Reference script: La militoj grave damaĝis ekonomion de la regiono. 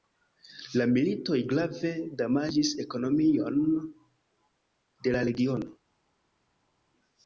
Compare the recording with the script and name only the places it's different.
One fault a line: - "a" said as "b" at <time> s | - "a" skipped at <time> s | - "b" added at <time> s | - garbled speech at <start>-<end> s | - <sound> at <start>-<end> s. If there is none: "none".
none